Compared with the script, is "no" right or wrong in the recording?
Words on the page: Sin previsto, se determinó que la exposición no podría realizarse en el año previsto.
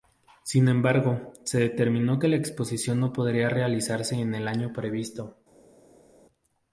right